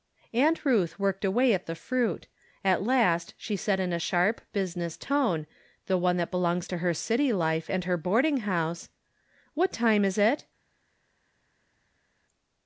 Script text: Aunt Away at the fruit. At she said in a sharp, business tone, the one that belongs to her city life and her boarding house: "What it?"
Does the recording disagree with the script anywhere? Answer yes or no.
yes